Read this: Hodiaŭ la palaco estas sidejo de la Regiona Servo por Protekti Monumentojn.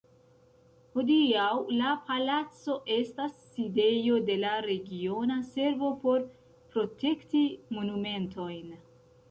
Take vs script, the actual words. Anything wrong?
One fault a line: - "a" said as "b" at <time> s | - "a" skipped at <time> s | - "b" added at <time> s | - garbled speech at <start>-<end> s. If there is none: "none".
none